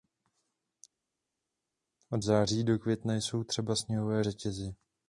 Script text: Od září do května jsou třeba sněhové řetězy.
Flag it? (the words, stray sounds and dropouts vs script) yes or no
no